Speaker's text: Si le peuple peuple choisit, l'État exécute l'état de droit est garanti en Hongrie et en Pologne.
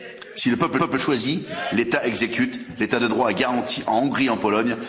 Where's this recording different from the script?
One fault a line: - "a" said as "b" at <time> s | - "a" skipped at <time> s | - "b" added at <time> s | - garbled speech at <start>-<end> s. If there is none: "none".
none